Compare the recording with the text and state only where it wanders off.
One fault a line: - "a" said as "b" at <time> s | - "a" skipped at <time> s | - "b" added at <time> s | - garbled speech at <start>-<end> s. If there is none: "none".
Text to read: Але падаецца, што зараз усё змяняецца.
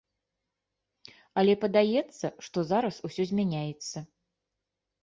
none